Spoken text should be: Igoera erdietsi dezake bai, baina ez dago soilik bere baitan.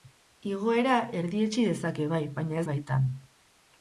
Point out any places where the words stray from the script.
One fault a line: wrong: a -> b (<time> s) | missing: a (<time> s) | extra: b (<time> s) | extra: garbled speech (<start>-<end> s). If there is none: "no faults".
missing: dago soilik bere (2.6 s)